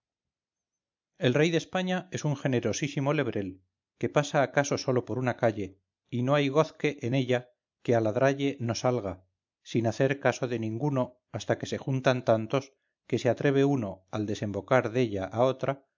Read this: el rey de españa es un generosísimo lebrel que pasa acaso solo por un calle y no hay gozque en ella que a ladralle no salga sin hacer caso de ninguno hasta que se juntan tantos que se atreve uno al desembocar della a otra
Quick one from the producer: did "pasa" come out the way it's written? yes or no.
yes